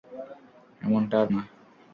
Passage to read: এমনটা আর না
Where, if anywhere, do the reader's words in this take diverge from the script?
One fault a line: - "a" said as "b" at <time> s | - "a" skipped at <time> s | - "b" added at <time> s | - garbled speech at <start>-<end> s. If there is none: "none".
none